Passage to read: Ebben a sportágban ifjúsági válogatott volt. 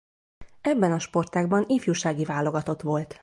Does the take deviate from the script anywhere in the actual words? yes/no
no